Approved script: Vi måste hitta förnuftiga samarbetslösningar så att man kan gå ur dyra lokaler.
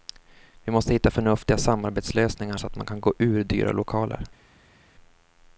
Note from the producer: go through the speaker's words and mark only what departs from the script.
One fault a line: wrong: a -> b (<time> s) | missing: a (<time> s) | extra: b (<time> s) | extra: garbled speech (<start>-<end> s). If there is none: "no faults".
no faults